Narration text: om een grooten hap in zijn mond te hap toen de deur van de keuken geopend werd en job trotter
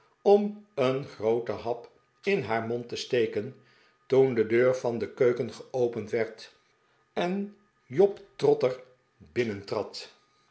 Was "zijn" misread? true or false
true